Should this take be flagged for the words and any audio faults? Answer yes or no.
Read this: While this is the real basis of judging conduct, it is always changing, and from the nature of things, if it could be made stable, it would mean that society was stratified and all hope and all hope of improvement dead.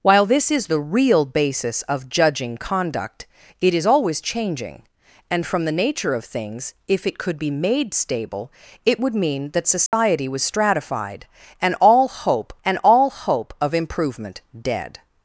yes